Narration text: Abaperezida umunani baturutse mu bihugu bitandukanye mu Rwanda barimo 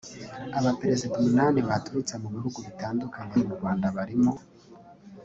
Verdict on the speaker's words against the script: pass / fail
pass